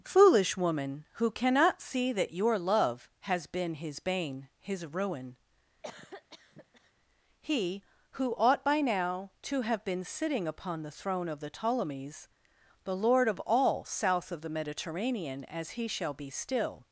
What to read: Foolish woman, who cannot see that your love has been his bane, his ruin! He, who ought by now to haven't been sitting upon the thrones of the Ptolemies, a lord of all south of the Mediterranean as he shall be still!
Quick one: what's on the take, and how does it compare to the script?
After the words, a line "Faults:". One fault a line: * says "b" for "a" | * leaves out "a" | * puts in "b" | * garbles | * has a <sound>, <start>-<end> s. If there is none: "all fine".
Foolish woman, who cannot see that your love has been his bane, his ruin! He, who ought by now to have been sitting upon the throne of the Ptolemies, the lord of all south of the Mediterranean as he shall be still!
Faults:
* has a cough, 5.8-6.9 s
* says "have" for "haven't"
* says "throne" for "thrones"
* says "the" for "a"